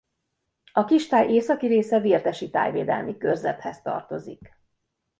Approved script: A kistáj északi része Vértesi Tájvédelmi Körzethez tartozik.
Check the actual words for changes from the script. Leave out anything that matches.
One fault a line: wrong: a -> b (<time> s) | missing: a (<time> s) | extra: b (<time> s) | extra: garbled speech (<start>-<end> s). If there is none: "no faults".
no faults